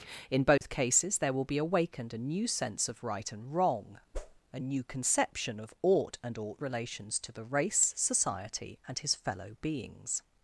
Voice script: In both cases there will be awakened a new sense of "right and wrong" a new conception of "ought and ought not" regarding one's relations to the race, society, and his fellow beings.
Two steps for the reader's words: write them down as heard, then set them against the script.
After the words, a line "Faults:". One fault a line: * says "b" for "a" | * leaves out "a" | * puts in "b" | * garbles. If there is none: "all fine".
In both cases there will be awakened a new sense of "right and wrong" a new conception of "ought and ought relations to the race, society, and his fellow beings.
Faults:
* leaves out "not regarding one's"